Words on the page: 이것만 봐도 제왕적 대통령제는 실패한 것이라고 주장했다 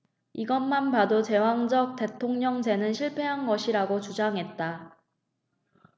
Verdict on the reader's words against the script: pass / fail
pass